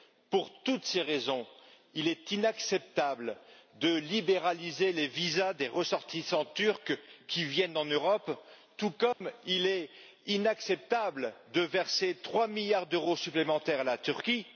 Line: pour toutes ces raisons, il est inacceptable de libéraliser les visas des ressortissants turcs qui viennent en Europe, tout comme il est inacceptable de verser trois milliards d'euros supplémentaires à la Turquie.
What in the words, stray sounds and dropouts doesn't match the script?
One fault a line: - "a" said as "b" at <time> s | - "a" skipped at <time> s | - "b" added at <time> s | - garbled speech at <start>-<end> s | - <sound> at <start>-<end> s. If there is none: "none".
- dropout at 9.1-9.2 s